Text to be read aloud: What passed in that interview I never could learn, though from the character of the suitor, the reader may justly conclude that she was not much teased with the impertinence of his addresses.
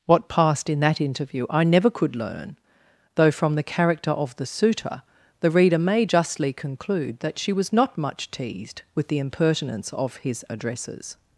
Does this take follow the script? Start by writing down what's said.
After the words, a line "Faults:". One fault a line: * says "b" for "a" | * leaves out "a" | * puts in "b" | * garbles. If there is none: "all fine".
What passed in that interview I never could learn, though from the character of the suitor, the reader may justly conclude that she was not much teased with the impertinence of his addresses.
Faults:
all fine